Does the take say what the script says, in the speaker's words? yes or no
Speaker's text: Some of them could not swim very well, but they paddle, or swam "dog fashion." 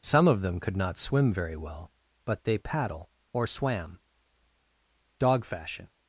yes